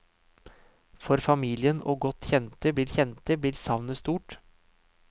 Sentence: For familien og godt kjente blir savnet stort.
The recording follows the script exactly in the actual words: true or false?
false